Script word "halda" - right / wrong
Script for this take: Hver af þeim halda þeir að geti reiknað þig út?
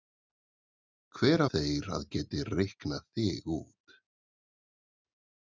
wrong